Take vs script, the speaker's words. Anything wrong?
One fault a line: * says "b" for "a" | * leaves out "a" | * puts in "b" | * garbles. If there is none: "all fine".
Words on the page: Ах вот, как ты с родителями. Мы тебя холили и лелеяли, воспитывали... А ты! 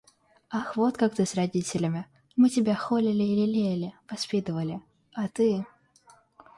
all fine